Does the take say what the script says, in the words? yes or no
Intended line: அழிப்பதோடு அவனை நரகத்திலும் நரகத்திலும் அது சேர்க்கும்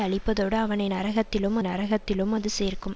yes